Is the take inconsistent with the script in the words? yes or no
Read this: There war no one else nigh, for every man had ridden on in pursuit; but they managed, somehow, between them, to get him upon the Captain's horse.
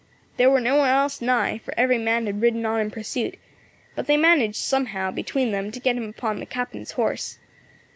no